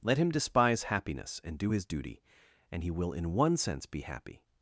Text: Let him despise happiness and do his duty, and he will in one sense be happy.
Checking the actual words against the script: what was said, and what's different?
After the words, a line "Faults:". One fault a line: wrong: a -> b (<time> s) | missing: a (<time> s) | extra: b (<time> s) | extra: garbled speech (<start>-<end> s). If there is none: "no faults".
Let him despise happiness and do his duty, and he will in one sense be happy.
Faults:
no faults